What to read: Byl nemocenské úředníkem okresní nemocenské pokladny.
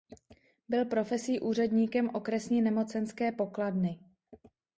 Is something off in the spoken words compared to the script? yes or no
yes